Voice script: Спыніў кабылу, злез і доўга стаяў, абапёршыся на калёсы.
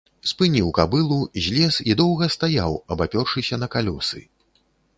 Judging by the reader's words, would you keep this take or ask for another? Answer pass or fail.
pass